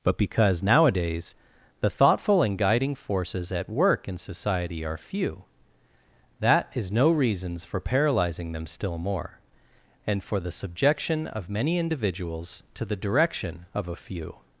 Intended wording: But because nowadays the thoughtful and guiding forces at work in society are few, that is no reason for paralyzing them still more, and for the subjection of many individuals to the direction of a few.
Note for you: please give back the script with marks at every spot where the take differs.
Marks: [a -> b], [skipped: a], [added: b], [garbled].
But because nowadays the thoughtful and guiding forces at work in society are few, that is no [reason -> reasons] for paralyzing them still more, and for the subjection of many individuals to the direction of a few.